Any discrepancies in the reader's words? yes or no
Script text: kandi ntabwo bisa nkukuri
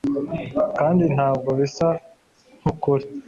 no